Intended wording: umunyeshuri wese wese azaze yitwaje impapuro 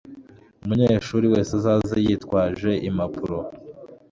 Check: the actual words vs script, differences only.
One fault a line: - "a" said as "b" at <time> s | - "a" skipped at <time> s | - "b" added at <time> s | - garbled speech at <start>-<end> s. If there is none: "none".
- "wese" skipped at 1.5 s